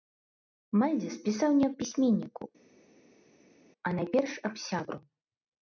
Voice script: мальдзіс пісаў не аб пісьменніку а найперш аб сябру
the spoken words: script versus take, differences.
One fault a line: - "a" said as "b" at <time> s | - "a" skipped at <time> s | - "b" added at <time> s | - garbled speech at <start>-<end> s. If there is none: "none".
none